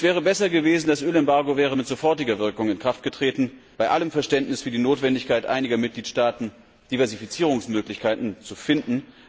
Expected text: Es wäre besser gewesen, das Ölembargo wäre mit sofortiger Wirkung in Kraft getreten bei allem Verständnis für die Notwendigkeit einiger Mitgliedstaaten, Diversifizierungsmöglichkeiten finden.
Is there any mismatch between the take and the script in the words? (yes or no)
yes